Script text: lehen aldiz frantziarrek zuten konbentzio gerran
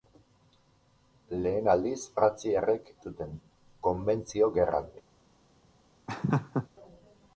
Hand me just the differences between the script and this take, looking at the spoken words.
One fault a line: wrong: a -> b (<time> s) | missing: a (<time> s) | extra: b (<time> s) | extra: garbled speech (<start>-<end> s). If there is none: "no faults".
no faults